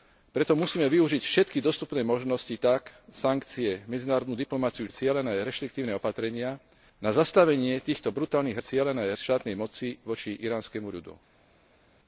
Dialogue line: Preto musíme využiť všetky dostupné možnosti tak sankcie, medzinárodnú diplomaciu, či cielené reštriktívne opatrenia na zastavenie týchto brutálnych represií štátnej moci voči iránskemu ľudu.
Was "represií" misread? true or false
true